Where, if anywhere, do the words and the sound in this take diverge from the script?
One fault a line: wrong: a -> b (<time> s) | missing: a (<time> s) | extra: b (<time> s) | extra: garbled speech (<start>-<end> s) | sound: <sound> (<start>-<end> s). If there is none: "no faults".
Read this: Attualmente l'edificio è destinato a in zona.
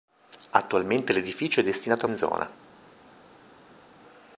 no faults